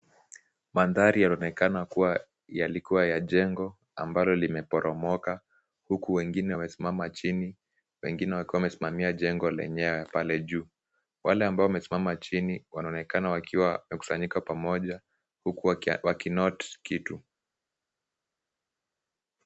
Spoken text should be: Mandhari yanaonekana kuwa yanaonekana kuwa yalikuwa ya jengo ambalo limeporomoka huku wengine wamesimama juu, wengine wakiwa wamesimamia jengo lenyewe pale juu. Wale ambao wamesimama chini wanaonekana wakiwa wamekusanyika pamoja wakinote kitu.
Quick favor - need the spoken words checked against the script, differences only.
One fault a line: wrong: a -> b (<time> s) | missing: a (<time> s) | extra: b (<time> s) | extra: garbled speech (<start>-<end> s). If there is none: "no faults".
missing: yanaonekana kuwa (2.2 s)
wrong: juu -> chini (7.1 s)
extra: huku (15.4 s)